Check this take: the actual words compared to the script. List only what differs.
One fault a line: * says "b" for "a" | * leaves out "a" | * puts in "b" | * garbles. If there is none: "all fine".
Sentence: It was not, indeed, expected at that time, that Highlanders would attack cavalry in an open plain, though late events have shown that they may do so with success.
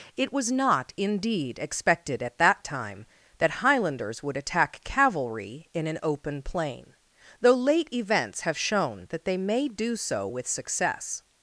all fine